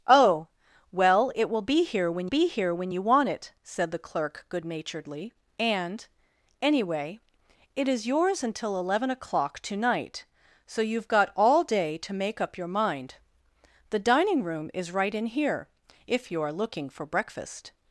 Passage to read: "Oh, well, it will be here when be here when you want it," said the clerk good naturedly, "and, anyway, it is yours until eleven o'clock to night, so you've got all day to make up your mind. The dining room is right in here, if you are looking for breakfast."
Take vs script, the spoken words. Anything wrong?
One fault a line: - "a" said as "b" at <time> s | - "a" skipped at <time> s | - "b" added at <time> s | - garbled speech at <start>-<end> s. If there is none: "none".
none